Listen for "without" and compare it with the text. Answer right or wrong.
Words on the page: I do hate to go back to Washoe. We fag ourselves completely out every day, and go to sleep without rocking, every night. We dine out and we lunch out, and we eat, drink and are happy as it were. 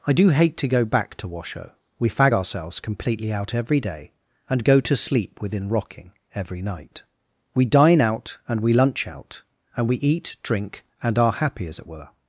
wrong